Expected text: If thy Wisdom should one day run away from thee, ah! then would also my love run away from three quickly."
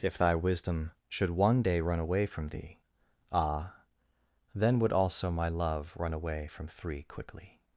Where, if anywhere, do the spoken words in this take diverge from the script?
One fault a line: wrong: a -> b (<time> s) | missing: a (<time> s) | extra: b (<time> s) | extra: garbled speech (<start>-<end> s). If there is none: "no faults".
no faults